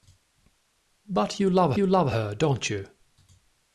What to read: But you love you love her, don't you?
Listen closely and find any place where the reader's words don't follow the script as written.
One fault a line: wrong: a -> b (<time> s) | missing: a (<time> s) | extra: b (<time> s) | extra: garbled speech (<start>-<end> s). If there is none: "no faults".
no faults